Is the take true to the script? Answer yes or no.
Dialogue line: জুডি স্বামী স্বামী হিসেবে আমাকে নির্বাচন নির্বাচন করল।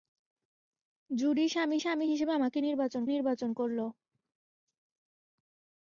yes